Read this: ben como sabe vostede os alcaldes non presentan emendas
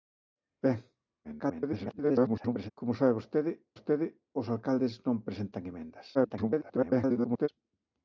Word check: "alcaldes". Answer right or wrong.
right